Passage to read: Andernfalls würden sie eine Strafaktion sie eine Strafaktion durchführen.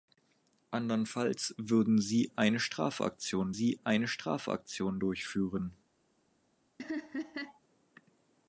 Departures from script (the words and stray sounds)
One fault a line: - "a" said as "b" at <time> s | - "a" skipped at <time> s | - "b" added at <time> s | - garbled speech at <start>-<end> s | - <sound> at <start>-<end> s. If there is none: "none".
- laugh at 6.8-7.6 s